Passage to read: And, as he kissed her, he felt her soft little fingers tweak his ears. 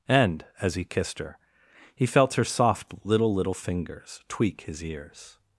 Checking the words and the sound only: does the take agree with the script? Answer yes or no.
no